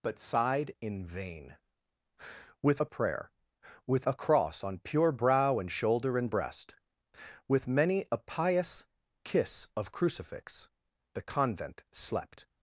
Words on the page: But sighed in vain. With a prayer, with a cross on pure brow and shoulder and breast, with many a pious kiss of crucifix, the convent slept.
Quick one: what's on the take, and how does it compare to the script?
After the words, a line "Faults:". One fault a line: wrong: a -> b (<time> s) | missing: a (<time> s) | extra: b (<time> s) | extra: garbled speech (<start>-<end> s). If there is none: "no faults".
But sighed in vain. With a prayer, with a cross on pure brow and shoulder and breast, with many a pious kiss of crucifix, the convent slept.
Faults:
no faults